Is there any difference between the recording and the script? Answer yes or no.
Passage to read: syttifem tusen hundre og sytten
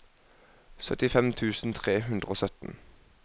yes